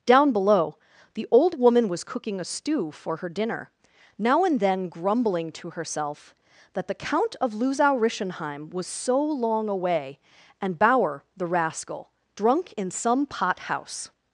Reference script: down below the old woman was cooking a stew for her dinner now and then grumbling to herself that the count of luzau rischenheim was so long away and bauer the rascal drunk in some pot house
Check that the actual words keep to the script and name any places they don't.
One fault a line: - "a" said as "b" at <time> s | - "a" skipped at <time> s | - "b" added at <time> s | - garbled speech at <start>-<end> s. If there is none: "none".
none